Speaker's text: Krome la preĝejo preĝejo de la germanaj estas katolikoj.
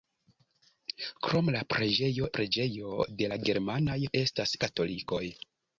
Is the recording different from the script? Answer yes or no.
no